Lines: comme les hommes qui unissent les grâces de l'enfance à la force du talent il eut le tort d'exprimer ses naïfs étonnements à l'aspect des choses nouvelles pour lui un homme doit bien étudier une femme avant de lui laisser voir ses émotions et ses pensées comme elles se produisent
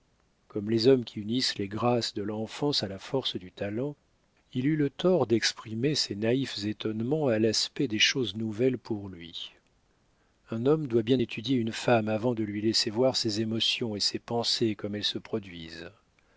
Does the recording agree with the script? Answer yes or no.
yes